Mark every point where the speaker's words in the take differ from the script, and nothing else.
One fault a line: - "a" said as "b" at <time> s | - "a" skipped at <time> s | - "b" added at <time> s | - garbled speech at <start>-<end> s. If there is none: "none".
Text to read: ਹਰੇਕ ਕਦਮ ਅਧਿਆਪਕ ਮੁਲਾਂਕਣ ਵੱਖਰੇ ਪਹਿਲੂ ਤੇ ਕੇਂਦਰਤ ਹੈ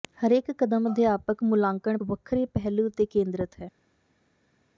none